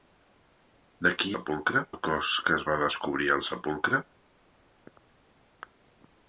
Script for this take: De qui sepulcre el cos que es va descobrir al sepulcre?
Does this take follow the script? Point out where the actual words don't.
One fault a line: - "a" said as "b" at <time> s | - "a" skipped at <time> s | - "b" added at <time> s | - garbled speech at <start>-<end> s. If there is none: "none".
none